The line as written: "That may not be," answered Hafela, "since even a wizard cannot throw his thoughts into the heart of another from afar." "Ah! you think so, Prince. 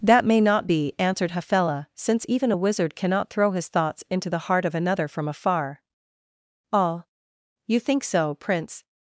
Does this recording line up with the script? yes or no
yes